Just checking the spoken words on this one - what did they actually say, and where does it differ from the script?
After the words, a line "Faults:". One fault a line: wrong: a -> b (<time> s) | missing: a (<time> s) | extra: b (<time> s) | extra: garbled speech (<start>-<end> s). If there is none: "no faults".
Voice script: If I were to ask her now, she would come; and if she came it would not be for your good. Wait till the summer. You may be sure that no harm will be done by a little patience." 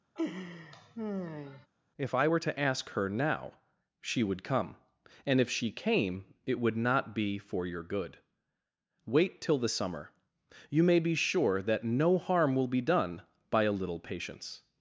If I were to ask her now, she would come; and if she came it would not be for your good. Wait till the summer. You may be sure that no harm will be done by a little patience."
Faults:
no faults